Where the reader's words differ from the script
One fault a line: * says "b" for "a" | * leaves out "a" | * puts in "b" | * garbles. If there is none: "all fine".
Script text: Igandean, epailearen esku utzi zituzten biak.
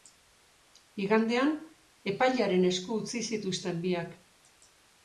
all fine